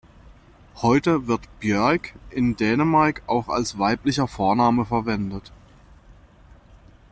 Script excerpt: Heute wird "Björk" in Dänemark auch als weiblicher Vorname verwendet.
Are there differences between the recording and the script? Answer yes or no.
no